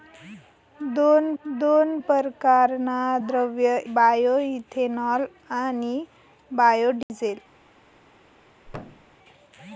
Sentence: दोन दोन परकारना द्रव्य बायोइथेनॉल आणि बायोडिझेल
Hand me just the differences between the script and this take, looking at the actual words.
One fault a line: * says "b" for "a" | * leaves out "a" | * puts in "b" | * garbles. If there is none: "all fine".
all fine